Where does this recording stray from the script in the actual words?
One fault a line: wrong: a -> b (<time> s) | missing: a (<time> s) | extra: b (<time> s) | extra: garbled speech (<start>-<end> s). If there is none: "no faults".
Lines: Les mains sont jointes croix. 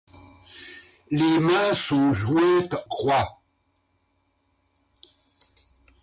no faults